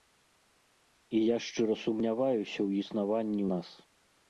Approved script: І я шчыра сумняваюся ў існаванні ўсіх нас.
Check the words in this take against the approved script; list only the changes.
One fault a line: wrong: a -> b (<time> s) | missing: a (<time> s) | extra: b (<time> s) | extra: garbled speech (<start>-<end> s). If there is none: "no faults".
missing: ўсіх (3.4 s)